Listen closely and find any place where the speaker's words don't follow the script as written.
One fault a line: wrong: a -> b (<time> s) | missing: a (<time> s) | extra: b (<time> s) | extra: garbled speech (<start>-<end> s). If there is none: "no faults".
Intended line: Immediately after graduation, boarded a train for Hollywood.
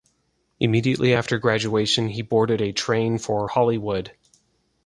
extra: he (2.1 s)